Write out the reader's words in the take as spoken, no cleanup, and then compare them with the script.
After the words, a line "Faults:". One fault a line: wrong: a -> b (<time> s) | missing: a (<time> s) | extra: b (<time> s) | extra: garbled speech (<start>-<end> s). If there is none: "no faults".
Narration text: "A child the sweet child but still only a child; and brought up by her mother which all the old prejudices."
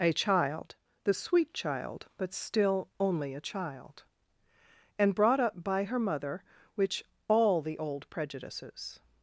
"A child the sweet child but still only a child; and brought up by her mother which all the old prejudices."
Faults:
no faults